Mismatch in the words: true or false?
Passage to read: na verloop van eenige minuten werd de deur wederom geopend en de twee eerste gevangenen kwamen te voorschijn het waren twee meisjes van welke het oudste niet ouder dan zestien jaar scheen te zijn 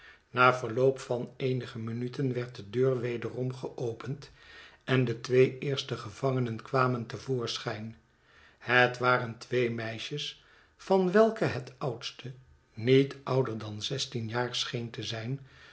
false